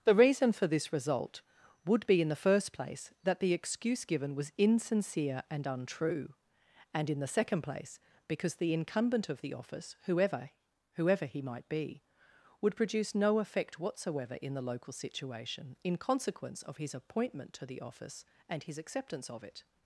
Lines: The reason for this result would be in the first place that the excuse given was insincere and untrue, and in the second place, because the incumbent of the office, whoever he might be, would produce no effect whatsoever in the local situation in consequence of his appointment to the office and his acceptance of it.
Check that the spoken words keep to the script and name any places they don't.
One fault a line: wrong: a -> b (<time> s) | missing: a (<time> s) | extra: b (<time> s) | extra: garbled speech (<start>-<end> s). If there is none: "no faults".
extra: whoever (10.9 s)